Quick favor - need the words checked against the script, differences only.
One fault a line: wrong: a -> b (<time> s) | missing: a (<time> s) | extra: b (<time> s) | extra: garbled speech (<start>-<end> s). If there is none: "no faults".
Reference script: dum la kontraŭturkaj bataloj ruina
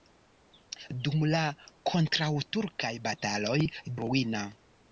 no faults